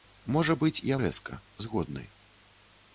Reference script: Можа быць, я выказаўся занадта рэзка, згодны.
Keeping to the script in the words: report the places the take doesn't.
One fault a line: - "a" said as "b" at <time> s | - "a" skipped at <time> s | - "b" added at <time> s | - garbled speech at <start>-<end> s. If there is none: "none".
- "выказаўся занадта" skipped at 1.0 s